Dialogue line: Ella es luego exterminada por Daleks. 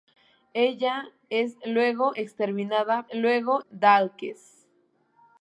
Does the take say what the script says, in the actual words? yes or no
no